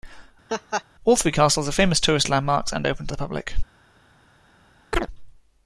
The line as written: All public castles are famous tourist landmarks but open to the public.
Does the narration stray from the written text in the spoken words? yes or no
yes